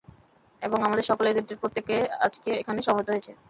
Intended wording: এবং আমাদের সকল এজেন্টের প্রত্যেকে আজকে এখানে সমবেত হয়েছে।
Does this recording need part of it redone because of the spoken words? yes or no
no